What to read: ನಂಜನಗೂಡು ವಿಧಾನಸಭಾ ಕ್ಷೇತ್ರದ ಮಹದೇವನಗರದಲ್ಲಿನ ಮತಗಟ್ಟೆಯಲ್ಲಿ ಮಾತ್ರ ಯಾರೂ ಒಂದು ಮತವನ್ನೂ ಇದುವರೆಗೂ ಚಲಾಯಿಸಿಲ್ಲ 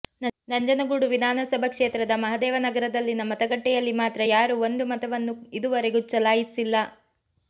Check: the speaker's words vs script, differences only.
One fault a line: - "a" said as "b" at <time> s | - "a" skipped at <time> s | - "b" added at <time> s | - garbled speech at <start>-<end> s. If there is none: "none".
none